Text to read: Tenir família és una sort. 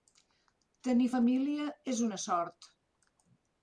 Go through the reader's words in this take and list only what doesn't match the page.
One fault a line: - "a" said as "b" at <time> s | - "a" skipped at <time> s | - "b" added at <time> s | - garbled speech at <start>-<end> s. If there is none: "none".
none